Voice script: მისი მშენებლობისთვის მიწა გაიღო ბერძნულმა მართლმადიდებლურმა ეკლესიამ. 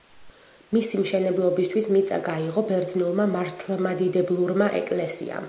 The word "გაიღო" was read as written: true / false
true